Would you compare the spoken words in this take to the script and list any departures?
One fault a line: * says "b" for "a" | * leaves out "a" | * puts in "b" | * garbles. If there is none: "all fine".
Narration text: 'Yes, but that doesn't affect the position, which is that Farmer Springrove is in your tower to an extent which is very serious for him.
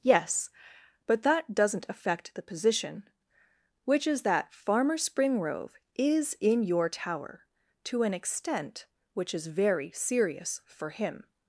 all fine